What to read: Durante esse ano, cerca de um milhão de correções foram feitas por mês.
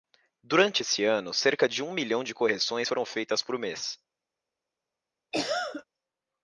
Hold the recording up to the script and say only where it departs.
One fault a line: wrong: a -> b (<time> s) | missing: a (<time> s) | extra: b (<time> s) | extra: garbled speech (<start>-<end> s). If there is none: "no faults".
no faults